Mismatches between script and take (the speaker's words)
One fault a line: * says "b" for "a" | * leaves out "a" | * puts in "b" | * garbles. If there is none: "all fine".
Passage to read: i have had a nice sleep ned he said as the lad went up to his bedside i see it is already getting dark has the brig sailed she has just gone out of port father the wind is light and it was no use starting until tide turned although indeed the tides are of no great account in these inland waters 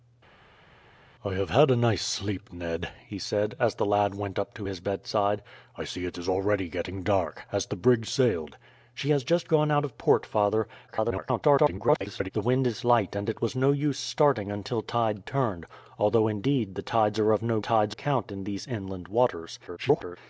* garbles
* says "tides" for "great"
* garbles